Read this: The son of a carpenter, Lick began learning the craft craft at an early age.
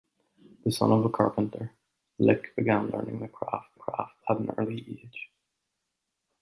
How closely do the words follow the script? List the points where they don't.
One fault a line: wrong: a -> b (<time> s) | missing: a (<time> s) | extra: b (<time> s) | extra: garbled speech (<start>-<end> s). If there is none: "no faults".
no faults